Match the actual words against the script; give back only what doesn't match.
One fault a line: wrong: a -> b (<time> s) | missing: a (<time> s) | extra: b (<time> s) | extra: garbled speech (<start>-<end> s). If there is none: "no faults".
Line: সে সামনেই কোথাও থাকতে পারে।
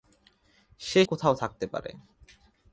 missing: সামনেই (1.1 s)